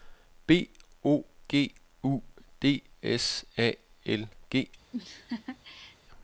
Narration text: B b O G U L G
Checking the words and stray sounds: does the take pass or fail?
fail